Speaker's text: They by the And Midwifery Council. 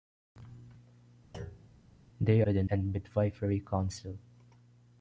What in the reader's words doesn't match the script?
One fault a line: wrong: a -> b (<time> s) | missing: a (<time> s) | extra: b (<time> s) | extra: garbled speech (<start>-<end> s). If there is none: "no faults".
no faults